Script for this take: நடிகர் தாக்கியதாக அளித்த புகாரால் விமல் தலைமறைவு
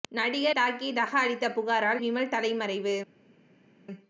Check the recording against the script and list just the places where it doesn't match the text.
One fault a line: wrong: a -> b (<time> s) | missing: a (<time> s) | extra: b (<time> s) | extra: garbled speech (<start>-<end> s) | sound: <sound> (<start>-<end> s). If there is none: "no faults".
no faults